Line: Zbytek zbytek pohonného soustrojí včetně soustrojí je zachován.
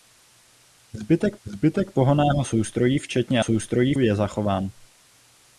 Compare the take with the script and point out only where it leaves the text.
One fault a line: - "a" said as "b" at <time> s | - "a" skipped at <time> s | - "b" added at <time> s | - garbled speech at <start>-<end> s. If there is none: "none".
none